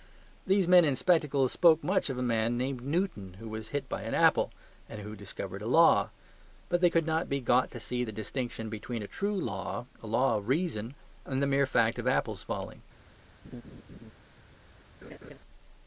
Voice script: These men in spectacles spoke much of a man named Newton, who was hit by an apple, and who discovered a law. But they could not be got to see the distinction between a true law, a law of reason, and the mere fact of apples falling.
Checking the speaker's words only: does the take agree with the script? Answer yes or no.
yes